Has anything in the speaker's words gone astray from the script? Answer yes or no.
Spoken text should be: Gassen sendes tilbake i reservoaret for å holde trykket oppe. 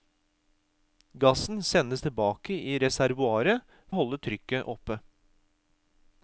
yes